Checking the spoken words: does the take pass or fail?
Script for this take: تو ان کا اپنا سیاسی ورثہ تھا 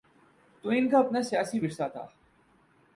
pass